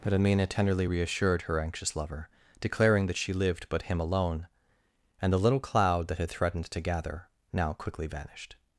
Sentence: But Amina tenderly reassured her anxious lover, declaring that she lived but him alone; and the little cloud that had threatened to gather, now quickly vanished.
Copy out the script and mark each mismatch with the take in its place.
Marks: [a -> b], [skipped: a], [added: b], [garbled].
But Amina tenderly reassured her anxious lover, declaring that she lived but him alone; and the little cloud that had threatened to gather, now quickly vanished.